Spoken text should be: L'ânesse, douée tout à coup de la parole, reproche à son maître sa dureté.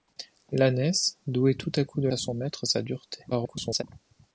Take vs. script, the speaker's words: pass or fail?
fail